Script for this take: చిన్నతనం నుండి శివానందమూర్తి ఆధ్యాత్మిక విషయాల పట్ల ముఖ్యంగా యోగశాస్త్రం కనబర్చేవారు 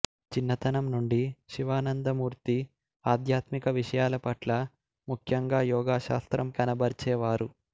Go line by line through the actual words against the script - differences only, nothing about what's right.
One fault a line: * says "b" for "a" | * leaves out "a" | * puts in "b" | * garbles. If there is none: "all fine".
all fine